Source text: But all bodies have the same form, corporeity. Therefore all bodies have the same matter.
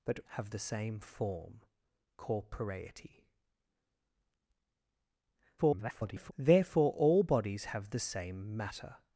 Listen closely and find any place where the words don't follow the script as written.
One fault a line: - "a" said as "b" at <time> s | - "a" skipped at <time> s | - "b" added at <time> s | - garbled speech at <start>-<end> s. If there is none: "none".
- "all bodies" skipped at 0.2 s
- garbled speech at 5.6-6.3 s